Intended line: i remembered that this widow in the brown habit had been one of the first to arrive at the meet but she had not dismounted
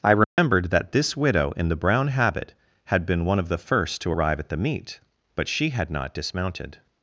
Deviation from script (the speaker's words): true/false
false